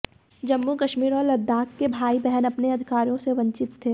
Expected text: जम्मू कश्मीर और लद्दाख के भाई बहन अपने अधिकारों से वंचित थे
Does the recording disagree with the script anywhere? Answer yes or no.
no